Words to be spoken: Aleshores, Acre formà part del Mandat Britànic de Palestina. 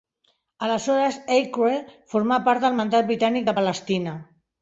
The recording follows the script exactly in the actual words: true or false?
true